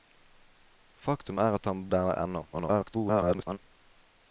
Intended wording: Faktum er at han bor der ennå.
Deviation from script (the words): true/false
true